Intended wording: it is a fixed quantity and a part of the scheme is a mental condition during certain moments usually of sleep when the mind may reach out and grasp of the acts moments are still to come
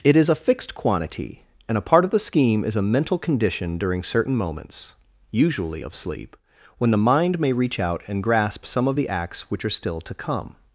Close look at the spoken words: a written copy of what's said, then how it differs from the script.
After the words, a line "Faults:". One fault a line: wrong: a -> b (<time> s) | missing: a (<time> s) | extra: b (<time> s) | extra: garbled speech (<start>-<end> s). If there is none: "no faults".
it is a fixed quantity and a part of the scheme is a mental condition during certain moments usually of sleep when the mind may reach out and grasp some of the acts which are still to come
Faults:
extra: some (8.7 s)
wrong: moments -> which (9.5 s)